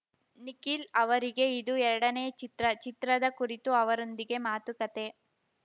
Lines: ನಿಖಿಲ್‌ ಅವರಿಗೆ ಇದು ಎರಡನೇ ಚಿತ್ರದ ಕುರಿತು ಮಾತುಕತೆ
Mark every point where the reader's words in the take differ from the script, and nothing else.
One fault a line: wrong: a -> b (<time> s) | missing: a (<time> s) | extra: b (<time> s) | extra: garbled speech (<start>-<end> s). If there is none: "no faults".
extra: ಚಿತ್ರ (2.4 s)
extra: ಅವರೊಂದಿಗೆ (3.8 s)